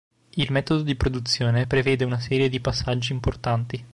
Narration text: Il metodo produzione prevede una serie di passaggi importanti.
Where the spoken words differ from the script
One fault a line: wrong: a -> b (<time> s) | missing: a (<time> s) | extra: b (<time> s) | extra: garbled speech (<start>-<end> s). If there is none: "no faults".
extra: di (0.8 s)